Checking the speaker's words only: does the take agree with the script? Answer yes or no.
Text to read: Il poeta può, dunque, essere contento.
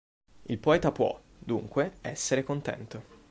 yes